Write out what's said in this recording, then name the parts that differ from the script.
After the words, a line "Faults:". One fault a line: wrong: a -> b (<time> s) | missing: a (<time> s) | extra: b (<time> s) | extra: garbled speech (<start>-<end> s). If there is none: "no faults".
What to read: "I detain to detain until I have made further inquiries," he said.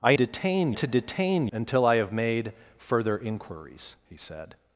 "I detain to detain until I have made further inquiries," he said.
Faults:
no faults